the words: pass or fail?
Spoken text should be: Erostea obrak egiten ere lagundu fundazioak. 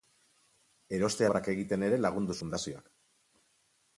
pass